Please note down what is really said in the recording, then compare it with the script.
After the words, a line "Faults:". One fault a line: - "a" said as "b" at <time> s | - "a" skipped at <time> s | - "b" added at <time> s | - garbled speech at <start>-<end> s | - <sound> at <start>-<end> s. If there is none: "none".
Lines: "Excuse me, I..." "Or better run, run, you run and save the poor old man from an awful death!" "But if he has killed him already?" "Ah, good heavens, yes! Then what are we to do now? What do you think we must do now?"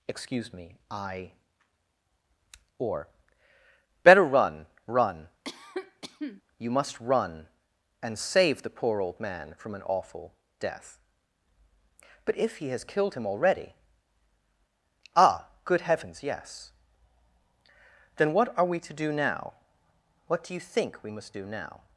"Excuse me, I..." "Or better run, run, you must run and save the poor old man from an awful death!" "But if he has killed him already?" "Ah, good heavens, yes! Then what are we to do now? What do you think we must do now?"
Faults:
- cough at 5.4-6.4 s
- "must" added at 6.7 s